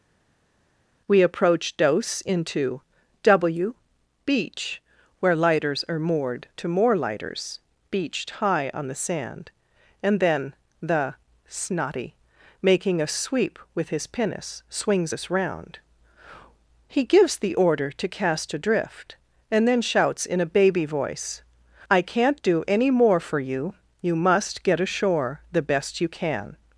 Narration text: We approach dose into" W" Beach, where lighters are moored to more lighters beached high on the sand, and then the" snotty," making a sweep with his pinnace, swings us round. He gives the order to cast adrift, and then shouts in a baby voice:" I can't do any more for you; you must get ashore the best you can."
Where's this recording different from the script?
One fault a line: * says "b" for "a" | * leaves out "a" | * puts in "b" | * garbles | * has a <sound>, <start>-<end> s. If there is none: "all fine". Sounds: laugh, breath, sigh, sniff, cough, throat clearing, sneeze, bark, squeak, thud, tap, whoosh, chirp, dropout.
all fine